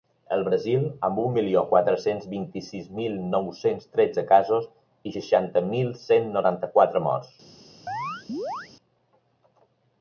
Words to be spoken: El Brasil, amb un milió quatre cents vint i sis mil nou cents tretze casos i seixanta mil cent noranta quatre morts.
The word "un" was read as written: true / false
true